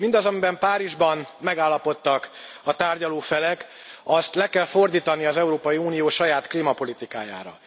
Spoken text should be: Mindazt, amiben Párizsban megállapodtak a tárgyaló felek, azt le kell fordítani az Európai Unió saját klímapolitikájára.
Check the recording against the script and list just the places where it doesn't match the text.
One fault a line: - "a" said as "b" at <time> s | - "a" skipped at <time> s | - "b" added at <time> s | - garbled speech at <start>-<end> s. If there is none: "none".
none